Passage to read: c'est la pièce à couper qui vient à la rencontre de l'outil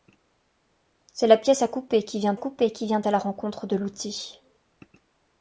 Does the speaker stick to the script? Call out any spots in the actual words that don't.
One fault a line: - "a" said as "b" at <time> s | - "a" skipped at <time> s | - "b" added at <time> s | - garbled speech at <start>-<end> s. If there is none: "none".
- "couper qui vient" added at 2.4 s